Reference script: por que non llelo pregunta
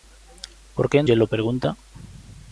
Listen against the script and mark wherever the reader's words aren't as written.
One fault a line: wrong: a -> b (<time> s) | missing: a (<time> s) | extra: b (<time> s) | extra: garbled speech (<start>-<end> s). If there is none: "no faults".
missing: non (1.0 s)